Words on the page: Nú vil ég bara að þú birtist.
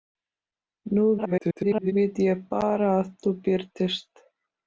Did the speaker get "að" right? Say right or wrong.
right